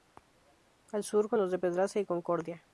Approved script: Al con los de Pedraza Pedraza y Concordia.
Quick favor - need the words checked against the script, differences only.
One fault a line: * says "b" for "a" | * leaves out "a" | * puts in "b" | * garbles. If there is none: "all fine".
* puts in "sur"
* leaves out "Pedraza"